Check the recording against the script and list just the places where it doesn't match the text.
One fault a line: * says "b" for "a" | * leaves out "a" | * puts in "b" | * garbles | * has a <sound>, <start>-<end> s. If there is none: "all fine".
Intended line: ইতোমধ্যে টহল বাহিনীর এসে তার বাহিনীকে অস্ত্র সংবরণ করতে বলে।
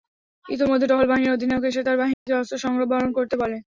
* puts in "অধিনায়ক"
* has a dropout, 2.1-2.3 s